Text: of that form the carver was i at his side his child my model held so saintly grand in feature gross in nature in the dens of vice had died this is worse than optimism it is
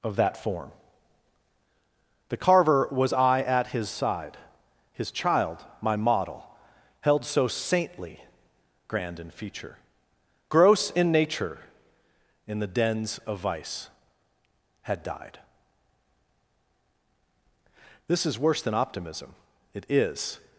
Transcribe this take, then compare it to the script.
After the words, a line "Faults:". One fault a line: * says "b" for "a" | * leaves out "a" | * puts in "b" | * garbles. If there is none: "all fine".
of that form the carver was i at his side his child my model held so saintly grand in feature gross in nature in the dens of vice had died this is worse than optimism it is
Faults:
all fine